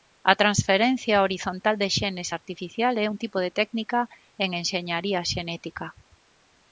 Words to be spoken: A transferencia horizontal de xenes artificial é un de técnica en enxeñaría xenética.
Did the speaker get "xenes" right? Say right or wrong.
right